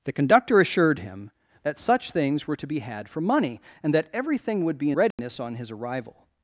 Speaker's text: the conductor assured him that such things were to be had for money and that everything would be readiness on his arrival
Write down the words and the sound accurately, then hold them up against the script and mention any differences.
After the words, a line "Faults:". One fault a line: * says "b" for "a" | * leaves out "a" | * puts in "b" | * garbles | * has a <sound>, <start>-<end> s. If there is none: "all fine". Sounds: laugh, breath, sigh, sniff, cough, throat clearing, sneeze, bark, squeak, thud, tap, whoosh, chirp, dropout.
the conductor assured him that such things were to be had for money and that everything would be readiness on his arrival
Faults:
* has a dropout, 5.1-5.2 s